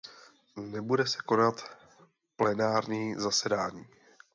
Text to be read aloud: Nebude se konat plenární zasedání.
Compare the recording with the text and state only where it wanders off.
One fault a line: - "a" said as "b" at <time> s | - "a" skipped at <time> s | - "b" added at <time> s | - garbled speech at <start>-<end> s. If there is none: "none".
none